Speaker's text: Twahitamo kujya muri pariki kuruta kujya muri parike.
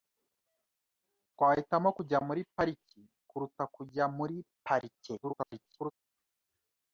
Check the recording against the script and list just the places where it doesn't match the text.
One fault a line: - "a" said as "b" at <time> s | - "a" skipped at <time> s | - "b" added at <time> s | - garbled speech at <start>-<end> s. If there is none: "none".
- garbled speech at 5.2-5.9 s